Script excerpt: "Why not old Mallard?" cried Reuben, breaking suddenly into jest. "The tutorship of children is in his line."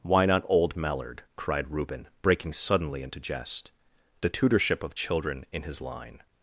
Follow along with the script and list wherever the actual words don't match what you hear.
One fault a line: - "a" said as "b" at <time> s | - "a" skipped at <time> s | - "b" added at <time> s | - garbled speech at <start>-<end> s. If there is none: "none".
- "is" skipped at 5.4 s